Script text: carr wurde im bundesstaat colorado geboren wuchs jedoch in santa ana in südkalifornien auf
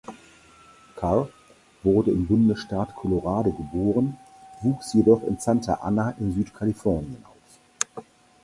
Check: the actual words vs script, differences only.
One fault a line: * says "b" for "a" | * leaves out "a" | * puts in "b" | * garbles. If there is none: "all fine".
all fine